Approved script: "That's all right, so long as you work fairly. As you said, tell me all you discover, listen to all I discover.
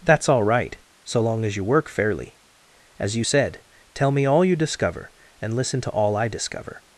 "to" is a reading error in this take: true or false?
false